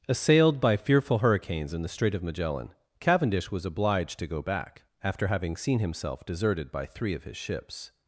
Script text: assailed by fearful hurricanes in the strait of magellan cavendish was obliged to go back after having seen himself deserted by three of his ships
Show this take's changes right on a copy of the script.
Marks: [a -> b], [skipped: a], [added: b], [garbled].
assailed by fearful hurricanes in the strait of magellan cavendish was obliged to go back after having seen himself deserted by three of his ships